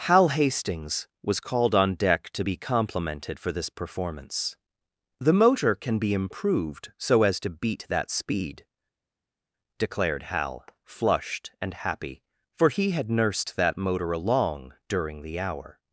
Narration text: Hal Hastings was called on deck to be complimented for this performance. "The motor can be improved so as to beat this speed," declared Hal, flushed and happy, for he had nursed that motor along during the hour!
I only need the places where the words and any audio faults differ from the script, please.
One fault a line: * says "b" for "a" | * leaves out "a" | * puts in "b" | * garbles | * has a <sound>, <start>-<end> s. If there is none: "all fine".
* says "that" for "this"